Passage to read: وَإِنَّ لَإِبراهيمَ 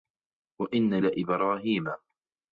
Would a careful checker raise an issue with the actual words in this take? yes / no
no